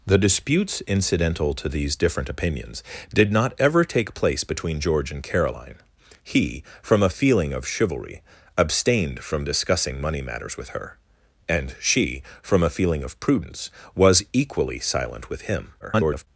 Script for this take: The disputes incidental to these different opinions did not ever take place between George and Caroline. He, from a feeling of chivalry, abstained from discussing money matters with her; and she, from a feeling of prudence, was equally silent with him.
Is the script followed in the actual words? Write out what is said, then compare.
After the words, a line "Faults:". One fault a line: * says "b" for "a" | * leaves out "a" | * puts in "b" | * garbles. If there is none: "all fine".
The disputes incidental to these different opinions did not ever take place between George and Caroline. He, from a feeling of chivalry, abstained from discussing money matters with her; and she, from a feeling of prudence, was equally silent with him. [garbled]
Faults:
* garbles